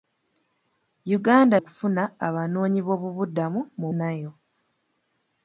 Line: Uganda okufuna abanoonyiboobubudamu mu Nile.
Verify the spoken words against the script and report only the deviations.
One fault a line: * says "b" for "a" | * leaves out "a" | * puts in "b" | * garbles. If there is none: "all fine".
all fine